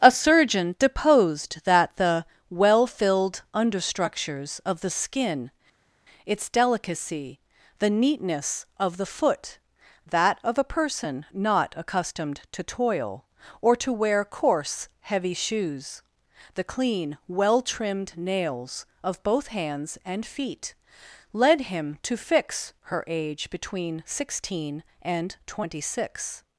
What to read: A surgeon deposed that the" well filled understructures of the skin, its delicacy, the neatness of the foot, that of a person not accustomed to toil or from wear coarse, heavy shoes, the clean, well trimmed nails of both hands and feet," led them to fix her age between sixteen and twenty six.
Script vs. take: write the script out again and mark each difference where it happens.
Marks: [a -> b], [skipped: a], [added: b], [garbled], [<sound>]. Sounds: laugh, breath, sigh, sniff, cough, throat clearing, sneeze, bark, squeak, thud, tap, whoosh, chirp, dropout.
A surgeon deposed that the" well filled understructures of the skin, its delicacy, the neatness of the foot, that of a person not accustomed to toil or [from -> to] wear coarse, heavy shoes, the clean, well trimmed nails of both hands and feet," led [them -> him] to fix her age between sixteen and twenty six.